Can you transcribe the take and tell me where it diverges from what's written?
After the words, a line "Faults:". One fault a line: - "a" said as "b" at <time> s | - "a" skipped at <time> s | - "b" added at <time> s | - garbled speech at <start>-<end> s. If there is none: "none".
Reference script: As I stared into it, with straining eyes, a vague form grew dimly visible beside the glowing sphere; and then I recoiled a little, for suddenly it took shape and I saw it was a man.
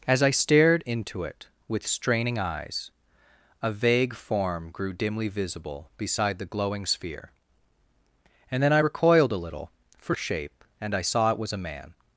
As I stared into it, with straining eyes, a vague form grew dimly visible beside the glowing sphere; and then I recoiled a little, for shape and I saw it was a man.
Faults:
- "suddenly it took" skipped at 10.1 s